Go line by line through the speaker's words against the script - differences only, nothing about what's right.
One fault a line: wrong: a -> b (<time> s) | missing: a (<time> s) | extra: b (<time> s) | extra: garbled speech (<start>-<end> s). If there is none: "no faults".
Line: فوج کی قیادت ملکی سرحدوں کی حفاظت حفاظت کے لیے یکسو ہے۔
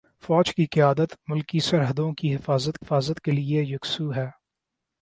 no faults